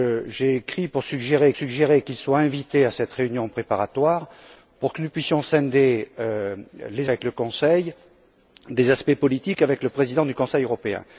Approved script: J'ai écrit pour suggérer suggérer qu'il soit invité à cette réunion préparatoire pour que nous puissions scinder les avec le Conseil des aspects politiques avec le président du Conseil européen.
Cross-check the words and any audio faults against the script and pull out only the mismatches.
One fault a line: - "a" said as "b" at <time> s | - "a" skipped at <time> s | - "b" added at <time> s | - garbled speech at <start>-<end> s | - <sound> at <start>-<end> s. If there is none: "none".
none